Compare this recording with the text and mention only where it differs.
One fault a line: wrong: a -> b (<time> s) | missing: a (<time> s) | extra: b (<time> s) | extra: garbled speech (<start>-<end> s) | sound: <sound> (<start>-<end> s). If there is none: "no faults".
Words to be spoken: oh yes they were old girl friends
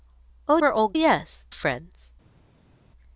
missing: yes they (0.6 s)
wrong: girl -> yes (0.9 s)